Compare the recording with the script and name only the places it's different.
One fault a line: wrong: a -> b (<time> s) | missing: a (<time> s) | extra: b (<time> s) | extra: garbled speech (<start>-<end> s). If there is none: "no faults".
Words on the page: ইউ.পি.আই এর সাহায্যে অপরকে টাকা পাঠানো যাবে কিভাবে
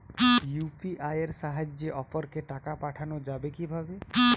no faults